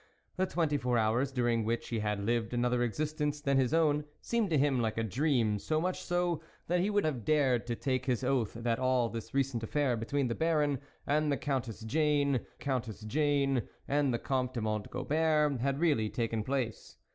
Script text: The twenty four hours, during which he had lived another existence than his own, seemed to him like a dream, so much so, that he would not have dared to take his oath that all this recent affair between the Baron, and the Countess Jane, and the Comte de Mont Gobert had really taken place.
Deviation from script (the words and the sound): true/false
true